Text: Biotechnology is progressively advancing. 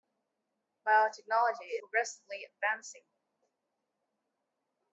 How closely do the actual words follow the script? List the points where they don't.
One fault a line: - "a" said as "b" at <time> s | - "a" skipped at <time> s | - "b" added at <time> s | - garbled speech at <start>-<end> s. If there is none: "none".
- "is" skipped at 1.8 s